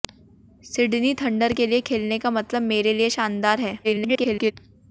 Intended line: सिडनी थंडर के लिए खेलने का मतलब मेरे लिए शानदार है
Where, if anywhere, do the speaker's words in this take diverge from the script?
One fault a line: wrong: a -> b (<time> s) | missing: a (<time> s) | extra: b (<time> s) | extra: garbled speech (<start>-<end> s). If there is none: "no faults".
extra: garbled speech (3.8-4.5 s)